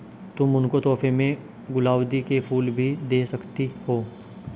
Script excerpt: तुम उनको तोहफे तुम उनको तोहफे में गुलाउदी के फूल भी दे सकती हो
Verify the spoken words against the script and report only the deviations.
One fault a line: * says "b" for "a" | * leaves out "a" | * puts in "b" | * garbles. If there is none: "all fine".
* leaves out "तुम उनको तोहफे"